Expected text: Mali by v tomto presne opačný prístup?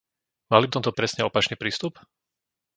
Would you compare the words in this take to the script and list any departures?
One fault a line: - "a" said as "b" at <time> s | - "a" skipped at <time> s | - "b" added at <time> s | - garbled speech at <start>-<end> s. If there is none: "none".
none